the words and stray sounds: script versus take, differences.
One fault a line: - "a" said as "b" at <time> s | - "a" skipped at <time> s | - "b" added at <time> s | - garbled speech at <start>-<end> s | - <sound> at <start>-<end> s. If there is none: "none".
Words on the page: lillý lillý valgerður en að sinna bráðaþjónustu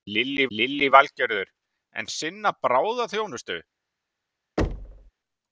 - thud at 4.6-5.1 s